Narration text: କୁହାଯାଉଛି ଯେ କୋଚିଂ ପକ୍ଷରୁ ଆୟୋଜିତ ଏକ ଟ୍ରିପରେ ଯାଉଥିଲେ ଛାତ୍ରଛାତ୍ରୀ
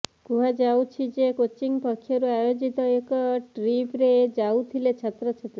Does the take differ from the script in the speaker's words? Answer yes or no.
no